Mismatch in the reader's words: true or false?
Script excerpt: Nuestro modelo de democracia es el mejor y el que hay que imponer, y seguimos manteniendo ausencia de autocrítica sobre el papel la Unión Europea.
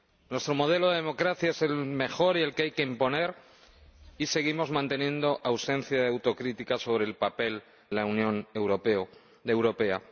false